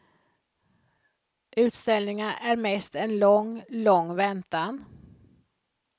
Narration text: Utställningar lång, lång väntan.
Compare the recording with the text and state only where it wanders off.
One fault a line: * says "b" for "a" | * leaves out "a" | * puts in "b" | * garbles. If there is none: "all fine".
* puts in "är mest en"